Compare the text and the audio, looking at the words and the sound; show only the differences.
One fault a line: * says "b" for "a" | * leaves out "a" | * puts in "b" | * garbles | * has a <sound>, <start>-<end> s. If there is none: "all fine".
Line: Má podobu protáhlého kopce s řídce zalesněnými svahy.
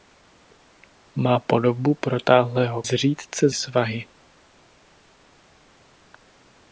* leaves out "kopce"
* leaves out "zalesněnými"